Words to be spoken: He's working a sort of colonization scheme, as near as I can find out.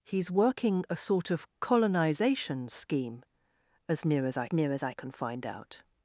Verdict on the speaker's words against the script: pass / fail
fail